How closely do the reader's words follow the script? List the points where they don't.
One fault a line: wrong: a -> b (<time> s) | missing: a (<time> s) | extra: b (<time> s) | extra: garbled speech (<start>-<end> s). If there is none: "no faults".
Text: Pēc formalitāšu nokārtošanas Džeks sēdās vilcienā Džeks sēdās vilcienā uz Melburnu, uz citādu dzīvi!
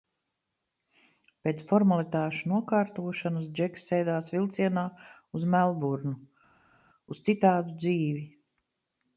missing: Džeks sēdās vilcienā (4.9 s)